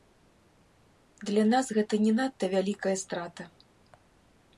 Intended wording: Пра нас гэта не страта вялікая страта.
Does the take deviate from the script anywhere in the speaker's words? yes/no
yes